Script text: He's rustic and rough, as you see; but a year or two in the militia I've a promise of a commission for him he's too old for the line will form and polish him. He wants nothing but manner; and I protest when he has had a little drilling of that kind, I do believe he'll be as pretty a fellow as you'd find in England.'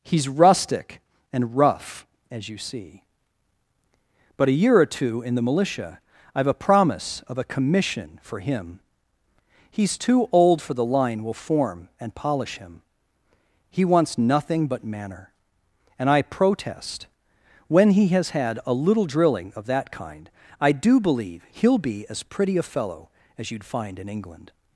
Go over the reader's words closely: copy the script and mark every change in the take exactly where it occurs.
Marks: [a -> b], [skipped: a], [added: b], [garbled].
He's rustic and rough, as you see; but a year or two in the militia I've a promise of a commission for him he's too old for the line will form and polish him. He wants nothing but manner; and I protest when he has had a little drilling of that kind, I do believe he'll be as pretty a fellow as you'd find in England.'